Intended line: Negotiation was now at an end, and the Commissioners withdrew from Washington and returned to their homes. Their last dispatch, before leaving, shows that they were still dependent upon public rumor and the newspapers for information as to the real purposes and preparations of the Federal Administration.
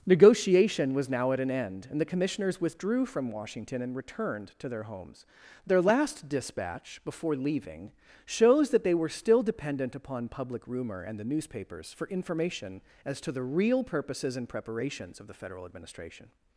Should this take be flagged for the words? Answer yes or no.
no